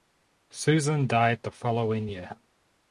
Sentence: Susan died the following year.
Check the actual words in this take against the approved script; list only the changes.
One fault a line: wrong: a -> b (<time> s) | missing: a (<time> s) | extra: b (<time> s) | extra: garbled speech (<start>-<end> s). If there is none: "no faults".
no faults